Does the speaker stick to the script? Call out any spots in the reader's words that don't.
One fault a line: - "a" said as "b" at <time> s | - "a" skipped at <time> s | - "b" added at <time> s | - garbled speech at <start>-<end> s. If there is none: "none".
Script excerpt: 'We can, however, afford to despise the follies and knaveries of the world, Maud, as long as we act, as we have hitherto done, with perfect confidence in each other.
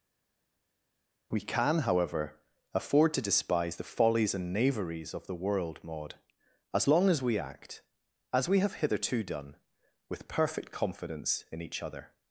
none